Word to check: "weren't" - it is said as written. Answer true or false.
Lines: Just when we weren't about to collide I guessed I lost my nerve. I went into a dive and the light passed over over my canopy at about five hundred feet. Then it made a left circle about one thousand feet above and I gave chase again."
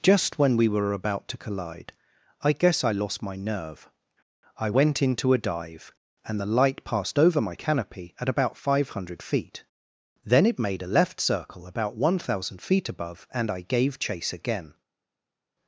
false